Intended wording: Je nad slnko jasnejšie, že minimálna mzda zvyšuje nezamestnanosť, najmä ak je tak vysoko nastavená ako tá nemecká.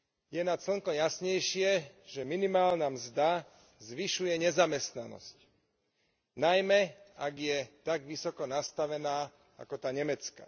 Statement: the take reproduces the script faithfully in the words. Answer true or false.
true